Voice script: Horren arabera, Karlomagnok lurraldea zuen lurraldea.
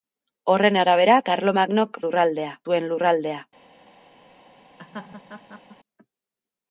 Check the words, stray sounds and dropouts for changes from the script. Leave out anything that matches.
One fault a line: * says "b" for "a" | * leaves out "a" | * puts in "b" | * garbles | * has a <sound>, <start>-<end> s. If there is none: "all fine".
* has a laugh, 4.8-5.8 s